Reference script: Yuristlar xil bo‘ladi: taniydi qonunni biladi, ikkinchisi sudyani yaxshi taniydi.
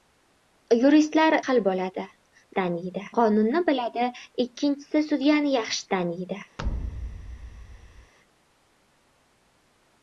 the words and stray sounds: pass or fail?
fail